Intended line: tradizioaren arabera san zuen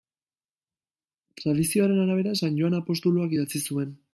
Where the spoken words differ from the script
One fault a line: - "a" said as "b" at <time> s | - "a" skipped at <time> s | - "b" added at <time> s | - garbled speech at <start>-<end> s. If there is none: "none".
- "joan apostoluak idatzi" added at 2.6 s